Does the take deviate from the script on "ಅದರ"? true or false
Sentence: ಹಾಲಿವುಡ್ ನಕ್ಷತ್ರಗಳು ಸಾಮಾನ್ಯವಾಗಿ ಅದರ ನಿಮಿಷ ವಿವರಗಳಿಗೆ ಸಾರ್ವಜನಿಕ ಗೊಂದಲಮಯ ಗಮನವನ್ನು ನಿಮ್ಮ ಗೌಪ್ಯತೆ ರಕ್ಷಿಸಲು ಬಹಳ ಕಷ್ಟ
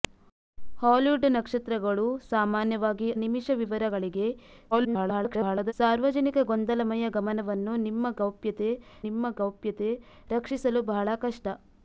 true